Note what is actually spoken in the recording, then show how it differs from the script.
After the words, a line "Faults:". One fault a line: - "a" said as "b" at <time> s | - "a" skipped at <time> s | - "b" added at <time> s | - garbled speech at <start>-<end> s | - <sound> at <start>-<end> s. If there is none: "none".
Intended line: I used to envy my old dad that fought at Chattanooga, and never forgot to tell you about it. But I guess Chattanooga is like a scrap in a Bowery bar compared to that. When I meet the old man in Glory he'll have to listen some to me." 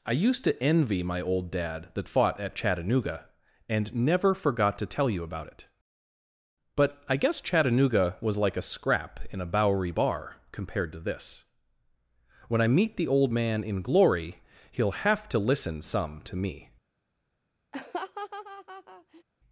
I used to envy my old dad that fought at Chattanooga, and never forgot to tell you about it. But I guess Chattanooga was like a scrap in a Bowery bar compared to this. When I meet the old man in Glory he'll have to listen some to me."
Faults:
- "is" said as "was" at 8.2 s
- "that" said as "this" at 11.0 s
- laugh at 17.7-19.2 s